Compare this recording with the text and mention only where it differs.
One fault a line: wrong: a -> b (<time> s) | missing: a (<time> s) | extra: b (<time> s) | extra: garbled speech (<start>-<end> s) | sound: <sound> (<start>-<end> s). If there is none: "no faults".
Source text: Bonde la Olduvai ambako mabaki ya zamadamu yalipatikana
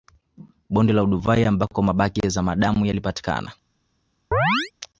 sound: chirp (4.3-4.7 s)